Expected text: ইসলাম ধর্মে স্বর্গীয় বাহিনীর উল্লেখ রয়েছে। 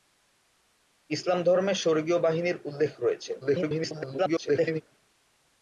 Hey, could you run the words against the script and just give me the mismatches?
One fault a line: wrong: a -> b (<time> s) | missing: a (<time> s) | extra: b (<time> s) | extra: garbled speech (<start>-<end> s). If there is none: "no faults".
extra: garbled speech (3.4-4.8 s)